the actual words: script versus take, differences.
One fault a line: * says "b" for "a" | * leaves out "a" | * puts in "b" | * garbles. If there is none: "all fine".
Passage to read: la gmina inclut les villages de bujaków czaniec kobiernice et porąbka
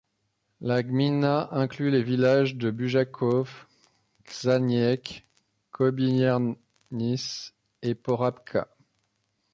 all fine